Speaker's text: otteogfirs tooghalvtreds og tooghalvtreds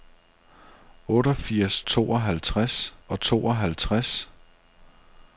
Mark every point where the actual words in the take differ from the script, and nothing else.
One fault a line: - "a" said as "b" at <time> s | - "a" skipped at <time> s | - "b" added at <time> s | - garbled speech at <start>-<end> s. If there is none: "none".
none